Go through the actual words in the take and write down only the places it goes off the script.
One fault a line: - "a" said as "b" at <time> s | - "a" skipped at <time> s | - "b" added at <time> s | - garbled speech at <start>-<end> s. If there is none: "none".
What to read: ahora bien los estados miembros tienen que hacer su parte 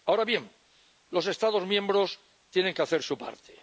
none